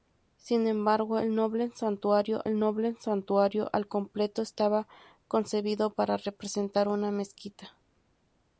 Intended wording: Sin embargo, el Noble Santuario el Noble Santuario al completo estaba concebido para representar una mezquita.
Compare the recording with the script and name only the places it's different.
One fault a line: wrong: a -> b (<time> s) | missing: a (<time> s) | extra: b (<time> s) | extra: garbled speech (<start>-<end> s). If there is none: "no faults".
no faults